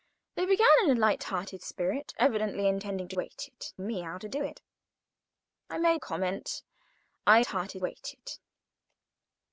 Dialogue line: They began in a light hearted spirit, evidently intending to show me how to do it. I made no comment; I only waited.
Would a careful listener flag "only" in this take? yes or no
yes